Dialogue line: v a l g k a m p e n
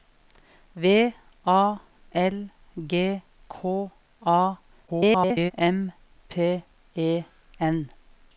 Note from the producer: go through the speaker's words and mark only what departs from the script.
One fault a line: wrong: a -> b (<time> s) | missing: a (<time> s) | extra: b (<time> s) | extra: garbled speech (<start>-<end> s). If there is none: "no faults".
extra: garbled speech (4.9-5.5 s)